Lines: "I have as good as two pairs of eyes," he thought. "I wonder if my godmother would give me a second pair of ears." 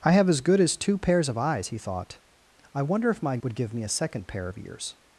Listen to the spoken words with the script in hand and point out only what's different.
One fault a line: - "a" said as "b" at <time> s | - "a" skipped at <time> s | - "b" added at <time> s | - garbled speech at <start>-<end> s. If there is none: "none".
- "godmother" skipped at 3.4 s